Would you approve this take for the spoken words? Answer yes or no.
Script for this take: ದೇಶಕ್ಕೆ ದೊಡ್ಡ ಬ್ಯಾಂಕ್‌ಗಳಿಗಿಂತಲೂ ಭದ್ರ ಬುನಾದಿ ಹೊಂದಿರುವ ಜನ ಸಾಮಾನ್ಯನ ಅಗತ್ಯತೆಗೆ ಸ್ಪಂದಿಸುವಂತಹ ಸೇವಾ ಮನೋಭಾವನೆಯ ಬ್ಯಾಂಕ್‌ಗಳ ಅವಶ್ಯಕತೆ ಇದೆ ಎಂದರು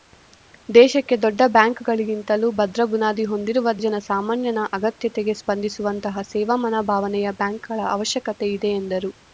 yes